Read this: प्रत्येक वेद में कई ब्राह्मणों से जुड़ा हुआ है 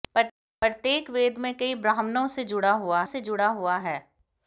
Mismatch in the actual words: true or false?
true